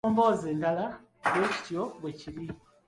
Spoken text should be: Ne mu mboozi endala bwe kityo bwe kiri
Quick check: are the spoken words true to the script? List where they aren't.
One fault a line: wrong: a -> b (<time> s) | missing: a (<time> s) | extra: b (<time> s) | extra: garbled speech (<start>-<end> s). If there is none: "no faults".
no faults